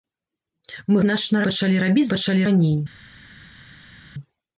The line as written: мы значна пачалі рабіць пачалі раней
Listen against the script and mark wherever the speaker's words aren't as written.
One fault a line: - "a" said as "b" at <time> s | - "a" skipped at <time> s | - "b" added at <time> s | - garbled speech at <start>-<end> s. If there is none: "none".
none